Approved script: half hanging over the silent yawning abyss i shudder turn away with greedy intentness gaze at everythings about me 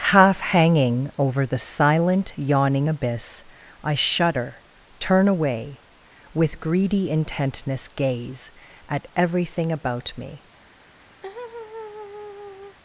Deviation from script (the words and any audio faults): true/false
true